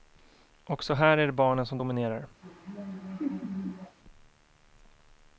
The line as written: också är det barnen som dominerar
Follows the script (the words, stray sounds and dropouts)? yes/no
no